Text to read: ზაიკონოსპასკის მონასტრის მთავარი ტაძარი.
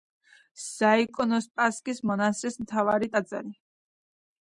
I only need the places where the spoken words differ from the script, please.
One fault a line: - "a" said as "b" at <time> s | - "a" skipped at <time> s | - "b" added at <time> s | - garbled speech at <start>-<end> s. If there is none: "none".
none